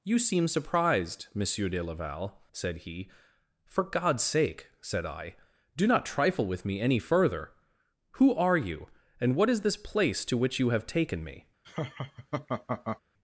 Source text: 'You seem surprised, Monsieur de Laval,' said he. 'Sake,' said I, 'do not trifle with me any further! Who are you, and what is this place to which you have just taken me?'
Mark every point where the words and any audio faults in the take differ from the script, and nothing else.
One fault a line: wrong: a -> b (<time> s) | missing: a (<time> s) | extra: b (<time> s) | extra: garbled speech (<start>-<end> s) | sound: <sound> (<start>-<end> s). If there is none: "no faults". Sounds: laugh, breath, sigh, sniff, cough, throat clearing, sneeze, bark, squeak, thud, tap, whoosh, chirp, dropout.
extra: For God's (3.6 s)
missing: just (10.9 s)
sound: laugh (11.6-13.0 s)